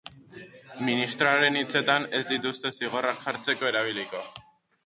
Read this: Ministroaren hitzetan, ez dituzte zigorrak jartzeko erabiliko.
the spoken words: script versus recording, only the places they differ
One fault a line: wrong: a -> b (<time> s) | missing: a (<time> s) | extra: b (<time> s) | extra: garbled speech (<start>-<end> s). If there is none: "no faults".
no faults